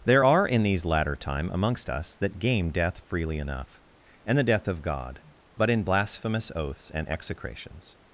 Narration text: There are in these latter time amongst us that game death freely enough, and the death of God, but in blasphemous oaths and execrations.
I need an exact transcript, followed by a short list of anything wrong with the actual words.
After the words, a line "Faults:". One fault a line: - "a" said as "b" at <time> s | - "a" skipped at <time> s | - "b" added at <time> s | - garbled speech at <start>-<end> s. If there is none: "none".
There are in these latter time amongst us that game death freely enough, and the death of God, but in blasphemous oaths and execrations.
Faults:
none